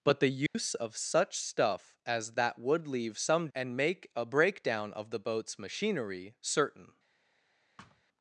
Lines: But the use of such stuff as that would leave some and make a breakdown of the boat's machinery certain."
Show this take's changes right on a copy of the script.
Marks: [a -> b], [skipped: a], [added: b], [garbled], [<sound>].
But the use [dropout] of such stuff as that would leave some and make a breakdown of the boat's machinery certain." [thud]